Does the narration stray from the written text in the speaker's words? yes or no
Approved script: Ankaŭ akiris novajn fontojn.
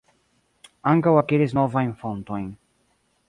no